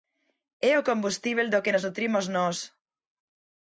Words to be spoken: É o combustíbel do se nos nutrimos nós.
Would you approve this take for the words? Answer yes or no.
no